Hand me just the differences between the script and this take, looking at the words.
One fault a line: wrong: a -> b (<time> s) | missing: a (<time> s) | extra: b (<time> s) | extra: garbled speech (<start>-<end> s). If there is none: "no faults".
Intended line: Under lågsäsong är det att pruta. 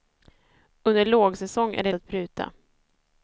no faults